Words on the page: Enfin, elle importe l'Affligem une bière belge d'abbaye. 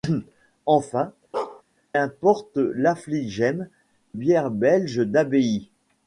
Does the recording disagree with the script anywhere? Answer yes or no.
yes